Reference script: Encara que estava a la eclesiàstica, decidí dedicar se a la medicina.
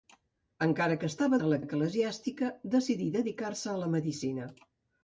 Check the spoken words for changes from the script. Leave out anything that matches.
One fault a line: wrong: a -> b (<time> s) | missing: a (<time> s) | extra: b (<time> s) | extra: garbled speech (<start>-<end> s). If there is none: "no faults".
no faults